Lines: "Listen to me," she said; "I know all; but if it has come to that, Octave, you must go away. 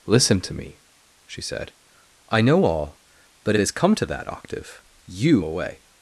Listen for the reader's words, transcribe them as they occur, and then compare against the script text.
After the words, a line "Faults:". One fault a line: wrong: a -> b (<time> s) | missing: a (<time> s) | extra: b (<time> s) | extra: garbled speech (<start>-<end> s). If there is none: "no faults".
"Listen to me," she said; "I know all; but has come to that, Octave, you away.
Faults:
missing: if it (3.5 s)
missing: must go (5.4 s)